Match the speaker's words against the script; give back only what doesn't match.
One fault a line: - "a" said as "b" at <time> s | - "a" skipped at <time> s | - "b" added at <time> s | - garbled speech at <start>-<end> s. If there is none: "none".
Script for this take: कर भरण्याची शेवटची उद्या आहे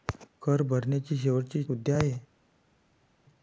none